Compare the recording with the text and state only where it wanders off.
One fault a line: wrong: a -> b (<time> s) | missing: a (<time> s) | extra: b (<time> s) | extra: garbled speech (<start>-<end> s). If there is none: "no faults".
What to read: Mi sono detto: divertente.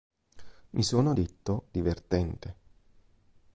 no faults